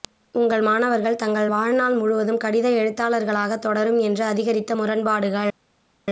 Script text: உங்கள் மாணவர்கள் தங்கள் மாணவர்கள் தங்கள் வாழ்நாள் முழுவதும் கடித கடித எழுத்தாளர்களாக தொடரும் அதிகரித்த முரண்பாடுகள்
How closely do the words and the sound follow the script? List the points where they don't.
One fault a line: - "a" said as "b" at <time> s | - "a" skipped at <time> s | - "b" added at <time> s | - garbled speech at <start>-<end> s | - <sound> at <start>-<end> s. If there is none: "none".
- "மாணவர்கள் தங்கள்" skipped at 1.5 s
- "கடித" skipped at 2.7 s
- "என்று" added at 4.0 s